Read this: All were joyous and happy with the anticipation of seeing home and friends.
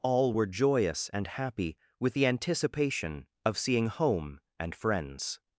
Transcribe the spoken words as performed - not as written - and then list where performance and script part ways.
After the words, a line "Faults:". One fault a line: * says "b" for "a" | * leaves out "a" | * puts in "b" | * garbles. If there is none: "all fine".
All were joyous and happy with the anticipation of seeing home and friends.
Faults:
all fine